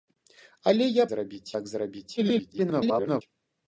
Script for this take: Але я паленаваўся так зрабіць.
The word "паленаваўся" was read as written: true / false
false